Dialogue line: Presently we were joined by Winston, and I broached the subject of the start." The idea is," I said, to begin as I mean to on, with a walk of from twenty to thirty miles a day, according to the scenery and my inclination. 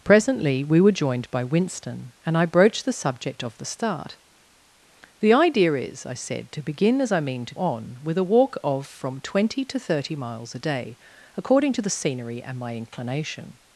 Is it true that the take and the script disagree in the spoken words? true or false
false